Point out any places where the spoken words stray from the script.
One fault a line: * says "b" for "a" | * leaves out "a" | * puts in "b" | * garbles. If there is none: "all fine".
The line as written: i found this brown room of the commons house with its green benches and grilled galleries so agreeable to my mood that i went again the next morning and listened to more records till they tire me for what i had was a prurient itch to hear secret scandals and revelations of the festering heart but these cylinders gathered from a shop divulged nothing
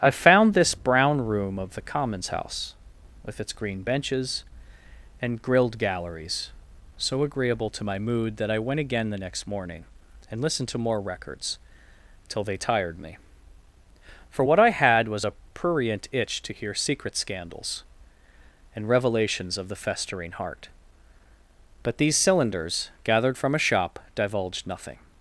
* says "tired" for "tire"